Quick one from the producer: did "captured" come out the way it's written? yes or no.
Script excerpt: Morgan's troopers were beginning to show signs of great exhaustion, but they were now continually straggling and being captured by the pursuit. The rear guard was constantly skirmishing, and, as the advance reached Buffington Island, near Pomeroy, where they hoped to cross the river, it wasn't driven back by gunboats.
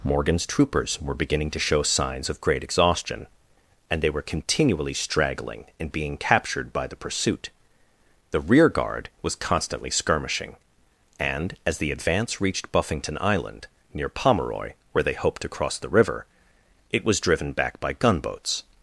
yes